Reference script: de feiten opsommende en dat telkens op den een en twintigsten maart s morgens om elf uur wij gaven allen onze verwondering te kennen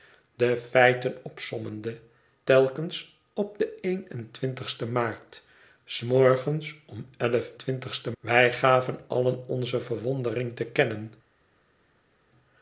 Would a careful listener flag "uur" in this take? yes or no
yes